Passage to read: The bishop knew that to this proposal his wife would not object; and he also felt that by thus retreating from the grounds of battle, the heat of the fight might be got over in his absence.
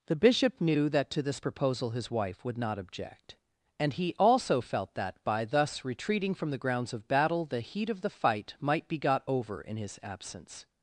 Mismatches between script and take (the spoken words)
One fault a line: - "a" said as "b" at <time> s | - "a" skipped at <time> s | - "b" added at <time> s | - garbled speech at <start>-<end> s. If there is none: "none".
none